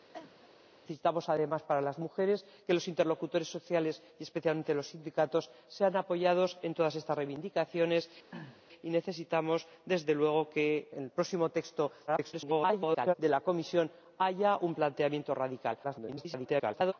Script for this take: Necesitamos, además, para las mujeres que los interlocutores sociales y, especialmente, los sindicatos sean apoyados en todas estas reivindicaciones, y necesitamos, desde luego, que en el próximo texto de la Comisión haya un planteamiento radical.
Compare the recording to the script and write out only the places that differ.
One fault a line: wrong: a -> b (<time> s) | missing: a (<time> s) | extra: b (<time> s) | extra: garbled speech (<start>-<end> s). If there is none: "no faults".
missing: en (10.9 s)
extra: garbled speech (12.1-13.1 s)
extra: garbled speech (15.8-16.9 s)